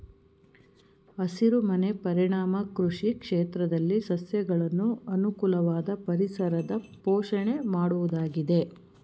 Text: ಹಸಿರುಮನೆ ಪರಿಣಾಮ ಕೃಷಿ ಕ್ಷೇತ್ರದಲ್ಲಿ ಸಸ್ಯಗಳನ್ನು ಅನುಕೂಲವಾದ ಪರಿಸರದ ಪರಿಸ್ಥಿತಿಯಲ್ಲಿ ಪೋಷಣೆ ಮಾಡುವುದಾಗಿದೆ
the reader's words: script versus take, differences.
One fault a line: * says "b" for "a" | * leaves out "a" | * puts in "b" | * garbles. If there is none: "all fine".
* leaves out "ಪರಿಸ್ಥಿತಿಯಲ್ಲಿ"